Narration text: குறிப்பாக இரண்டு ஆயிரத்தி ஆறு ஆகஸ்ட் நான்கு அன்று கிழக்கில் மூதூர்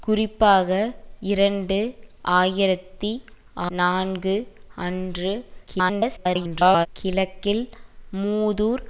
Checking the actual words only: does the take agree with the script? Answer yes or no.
no